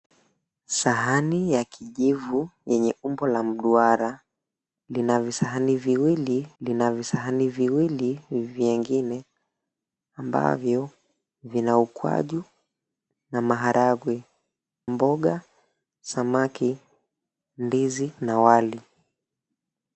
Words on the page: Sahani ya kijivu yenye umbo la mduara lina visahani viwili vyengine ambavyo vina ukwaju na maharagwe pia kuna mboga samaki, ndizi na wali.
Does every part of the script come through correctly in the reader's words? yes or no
no